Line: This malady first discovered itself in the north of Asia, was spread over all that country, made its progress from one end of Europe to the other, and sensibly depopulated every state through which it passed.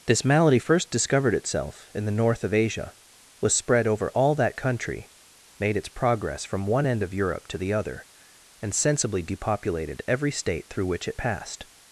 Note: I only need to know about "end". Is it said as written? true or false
true